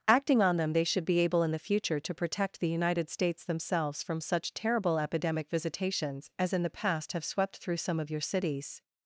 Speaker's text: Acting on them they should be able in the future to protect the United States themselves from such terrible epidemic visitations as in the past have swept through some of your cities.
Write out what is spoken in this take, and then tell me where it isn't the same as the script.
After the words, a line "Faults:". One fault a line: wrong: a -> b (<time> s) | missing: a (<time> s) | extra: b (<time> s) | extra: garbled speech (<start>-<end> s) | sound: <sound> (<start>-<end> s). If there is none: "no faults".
Acting on them they should be able in the future to protect the United States themselves from such terrible epidemic visitations as in the past have swept through some of your cities.
Faults:
no faults